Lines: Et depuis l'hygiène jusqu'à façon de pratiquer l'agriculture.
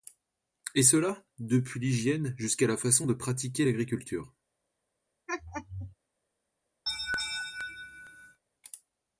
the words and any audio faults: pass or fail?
fail